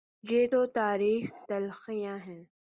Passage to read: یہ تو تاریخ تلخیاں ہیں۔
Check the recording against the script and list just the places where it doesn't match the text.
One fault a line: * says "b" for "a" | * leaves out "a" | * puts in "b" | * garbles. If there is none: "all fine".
all fine